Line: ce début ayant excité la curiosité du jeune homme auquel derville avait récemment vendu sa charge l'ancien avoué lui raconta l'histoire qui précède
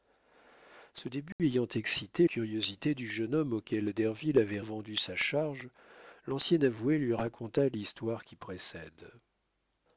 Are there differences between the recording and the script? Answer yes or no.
yes